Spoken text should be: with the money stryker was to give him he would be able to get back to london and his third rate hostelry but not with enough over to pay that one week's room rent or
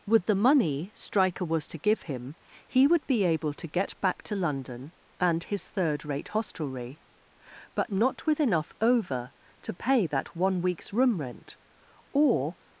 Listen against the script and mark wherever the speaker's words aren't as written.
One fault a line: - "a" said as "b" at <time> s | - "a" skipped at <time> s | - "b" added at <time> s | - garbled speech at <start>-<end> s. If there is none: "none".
none